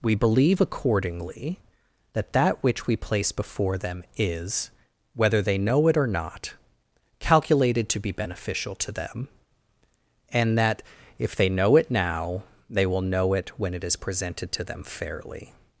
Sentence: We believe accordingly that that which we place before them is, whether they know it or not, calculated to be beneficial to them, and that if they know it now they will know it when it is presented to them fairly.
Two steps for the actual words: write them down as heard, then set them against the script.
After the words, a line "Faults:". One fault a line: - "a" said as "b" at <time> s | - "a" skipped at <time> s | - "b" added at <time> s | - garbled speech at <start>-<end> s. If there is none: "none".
We believe accordingly that that which we place before them is, whether they know it or not, calculated to be beneficial to them, and that if they know it now they will know it when it is presented to them fairly.
Faults:
none